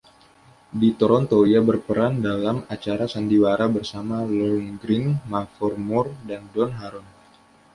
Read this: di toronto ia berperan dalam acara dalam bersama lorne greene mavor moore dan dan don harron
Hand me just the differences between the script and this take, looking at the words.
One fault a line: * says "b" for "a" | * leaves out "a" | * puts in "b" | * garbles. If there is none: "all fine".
* says "sandiwara" for "dalam"
* leaves out "dan"